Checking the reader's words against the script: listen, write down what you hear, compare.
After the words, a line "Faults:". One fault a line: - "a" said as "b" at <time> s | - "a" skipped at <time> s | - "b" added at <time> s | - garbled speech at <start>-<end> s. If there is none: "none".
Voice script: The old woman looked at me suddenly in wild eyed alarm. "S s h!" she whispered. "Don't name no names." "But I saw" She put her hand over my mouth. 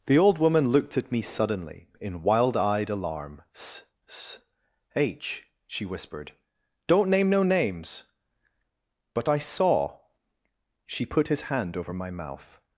The old woman looked at me suddenly in wild eyed alarm. "S s h!" she whispered. "Don't name no names." "But I saw" She put his hand over my mouth.
Faults:
- "her" said as "his" at 11.3 s